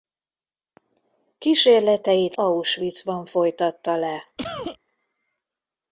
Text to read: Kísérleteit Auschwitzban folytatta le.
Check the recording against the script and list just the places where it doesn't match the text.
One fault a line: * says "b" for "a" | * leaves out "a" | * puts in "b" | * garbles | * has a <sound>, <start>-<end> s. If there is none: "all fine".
* has a cough, 4.4-4.8 s